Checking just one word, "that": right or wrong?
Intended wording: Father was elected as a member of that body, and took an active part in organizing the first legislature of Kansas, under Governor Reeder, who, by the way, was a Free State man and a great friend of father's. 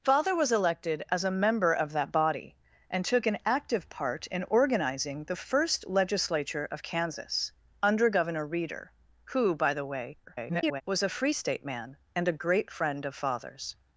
right